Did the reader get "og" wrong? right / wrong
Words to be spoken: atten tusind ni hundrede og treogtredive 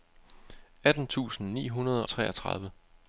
wrong